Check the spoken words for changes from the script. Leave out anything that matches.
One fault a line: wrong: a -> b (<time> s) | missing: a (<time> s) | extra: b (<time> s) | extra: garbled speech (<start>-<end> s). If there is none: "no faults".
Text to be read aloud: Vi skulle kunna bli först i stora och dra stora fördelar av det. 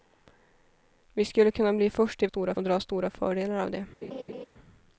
no faults